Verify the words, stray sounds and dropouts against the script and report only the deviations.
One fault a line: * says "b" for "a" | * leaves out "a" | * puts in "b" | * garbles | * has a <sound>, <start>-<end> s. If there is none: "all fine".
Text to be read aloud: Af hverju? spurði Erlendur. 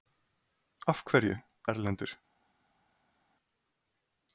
* leaves out "spurði"